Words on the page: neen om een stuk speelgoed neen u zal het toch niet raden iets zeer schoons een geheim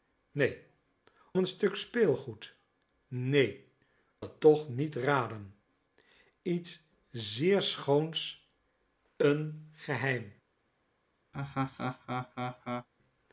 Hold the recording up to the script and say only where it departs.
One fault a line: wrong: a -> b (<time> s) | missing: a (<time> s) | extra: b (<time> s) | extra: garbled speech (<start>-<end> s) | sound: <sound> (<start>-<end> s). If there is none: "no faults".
missing: om (0.6 s)
missing: u zal (3.6 s)
sound: laugh (11.3-12.9 s)